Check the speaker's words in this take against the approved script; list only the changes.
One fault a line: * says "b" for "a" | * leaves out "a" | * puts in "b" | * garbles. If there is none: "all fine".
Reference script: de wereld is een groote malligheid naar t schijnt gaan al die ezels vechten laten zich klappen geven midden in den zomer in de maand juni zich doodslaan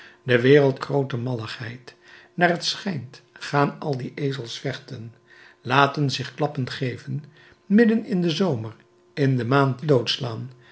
* leaves out "is een"
* leaves out "juni zich"